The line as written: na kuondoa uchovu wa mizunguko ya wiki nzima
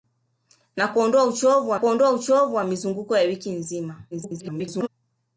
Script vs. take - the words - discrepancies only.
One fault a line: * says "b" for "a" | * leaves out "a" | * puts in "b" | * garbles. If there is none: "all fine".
* puts in "kuondoa uchovu wa"
* garbles